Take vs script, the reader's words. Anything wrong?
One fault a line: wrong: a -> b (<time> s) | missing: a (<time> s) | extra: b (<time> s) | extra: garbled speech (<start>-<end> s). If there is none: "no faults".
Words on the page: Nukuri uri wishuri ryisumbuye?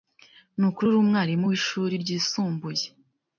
extra: umwarimu (1.0 s)